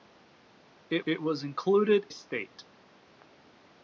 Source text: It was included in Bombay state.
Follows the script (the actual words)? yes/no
no